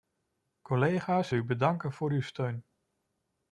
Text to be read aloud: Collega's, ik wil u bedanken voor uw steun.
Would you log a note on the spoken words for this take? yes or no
yes